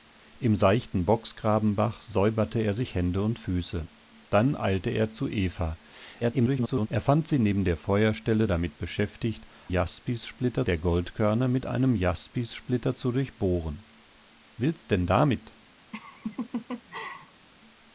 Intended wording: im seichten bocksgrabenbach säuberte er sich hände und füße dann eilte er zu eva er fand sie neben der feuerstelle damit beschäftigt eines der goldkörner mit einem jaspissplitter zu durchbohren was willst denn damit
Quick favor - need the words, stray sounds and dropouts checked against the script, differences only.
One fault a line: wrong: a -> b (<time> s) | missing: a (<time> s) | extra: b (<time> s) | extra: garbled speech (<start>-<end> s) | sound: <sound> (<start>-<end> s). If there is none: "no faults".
extra: garbled speech (6.2-6.9 s)
wrong: eines -> jaspissplitter (9.7 s)
missing: was (13.9 s)
sound: laugh (15.9-17.5 s)